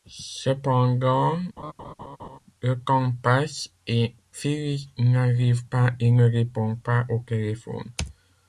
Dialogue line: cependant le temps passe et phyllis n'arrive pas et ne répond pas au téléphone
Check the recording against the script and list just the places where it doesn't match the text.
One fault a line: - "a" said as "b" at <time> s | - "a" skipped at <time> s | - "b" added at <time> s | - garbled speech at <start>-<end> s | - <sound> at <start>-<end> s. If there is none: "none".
- laugh at 1.6-2.4 s